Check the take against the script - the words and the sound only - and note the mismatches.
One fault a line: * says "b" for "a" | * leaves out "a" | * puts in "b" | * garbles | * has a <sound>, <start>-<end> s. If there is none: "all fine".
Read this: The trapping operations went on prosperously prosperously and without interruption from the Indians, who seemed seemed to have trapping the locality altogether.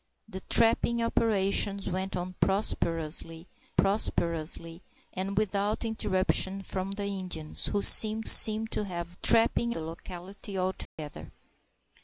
* has a dropout, 10.9-11.0 s